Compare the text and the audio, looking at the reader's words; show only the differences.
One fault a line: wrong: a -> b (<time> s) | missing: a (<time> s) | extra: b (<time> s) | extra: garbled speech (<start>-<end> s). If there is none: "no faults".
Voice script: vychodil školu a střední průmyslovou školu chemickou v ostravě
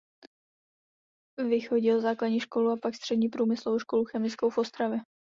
extra: základní (2.0 s)
extra: pak (2.8 s)